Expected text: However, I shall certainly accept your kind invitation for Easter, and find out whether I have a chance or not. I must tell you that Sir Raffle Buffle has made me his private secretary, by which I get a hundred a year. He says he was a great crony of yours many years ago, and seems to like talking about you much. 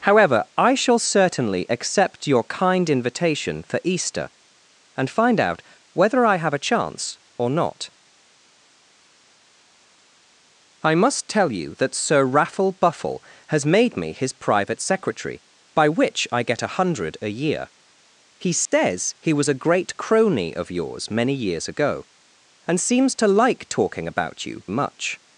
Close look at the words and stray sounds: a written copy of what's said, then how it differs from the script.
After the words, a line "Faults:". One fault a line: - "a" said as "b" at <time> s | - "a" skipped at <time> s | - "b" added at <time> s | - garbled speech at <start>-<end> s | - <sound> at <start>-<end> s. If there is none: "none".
However, I shall certainly accept your kind invitation for Easter, and find out whether I have a chance or not. I must tell you that Sir Raffle Buffle has made me his private secretary, by which I get a hundred a year. He says he was a great crony of yours many years ago, and seems to like talking about you much.
Faults:
- dropout at 18.7-18.7 s